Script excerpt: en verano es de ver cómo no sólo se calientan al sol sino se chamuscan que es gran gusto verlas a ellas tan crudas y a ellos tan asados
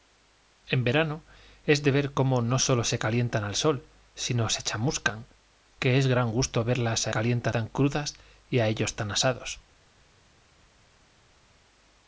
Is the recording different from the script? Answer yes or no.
yes